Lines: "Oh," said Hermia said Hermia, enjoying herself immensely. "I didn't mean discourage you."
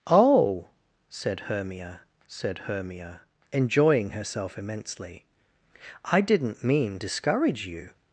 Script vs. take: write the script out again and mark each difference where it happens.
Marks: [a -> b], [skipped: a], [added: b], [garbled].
"Oh," said Hermia said Hermia, enjoying herself immensely. "I didn't mean discourage you."